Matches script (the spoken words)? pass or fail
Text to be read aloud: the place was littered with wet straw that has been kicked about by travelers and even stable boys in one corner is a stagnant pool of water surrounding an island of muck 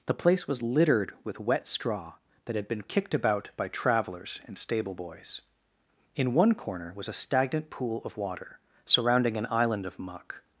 fail